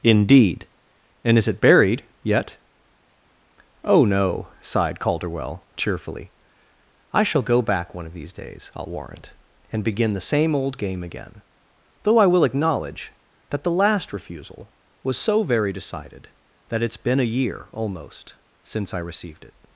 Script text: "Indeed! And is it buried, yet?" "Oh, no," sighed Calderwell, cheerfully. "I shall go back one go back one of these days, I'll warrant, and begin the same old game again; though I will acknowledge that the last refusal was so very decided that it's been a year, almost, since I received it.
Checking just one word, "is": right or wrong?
right